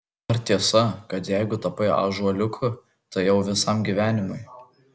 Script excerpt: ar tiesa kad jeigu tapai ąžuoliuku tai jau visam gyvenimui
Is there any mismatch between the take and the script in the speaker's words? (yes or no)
no